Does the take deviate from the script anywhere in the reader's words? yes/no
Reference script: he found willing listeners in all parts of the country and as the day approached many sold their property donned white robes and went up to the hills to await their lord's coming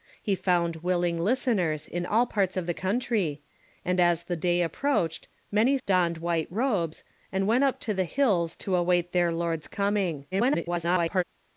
yes